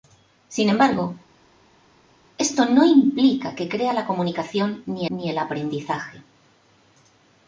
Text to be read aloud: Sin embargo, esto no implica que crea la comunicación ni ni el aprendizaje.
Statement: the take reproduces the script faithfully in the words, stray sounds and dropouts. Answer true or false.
true